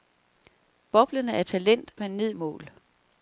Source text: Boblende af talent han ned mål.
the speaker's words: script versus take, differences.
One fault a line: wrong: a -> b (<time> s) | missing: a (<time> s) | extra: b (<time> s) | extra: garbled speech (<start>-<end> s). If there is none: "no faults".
no faults